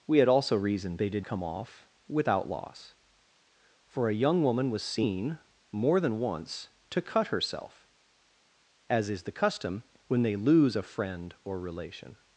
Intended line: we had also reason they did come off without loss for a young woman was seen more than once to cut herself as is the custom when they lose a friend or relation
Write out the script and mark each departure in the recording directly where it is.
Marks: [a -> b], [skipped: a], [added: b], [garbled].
we had also reason they did come off without loss for a young woman was seen more than once to cut herself as is the custom when they lose a friend or relation